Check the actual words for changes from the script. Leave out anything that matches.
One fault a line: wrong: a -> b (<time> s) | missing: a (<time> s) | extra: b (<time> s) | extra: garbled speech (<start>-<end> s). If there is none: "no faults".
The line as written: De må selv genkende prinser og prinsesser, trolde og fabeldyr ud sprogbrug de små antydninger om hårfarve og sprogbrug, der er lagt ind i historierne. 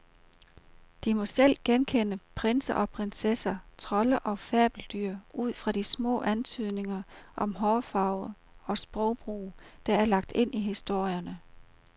wrong: sprogbrug -> fra (5.5 s)